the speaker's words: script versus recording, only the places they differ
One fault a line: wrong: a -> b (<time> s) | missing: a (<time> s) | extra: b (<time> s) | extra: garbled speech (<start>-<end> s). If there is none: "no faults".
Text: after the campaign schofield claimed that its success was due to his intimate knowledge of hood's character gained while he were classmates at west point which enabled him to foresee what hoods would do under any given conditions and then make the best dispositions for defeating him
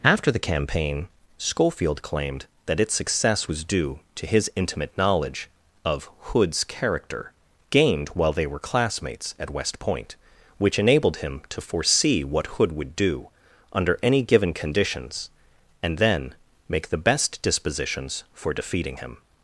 wrong: he -> they (8.3 s)
wrong: hoods -> hood (12.5 s)